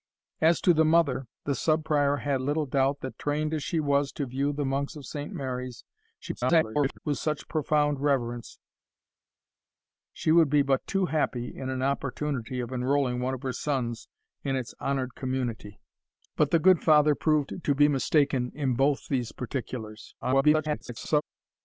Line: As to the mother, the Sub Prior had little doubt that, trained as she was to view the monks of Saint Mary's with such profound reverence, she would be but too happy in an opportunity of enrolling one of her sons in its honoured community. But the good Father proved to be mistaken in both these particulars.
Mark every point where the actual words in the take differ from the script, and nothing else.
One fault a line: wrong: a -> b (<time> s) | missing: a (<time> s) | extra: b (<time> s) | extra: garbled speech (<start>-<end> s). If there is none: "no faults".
extra: garbled speech (6.2-7.0 s)
extra: garbled speech (20.2-21.2 s)